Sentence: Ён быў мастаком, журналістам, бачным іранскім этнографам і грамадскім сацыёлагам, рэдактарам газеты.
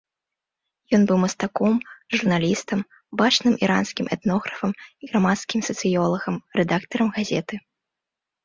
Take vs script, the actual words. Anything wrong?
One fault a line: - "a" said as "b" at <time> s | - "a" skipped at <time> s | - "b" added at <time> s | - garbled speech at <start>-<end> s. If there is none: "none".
none